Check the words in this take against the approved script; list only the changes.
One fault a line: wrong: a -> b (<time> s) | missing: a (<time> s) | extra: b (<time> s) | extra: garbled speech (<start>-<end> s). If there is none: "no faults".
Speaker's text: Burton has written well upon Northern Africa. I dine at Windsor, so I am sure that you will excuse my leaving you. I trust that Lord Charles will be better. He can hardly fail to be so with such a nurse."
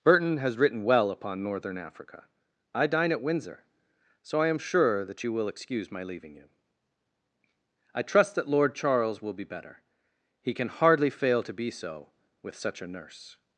no faults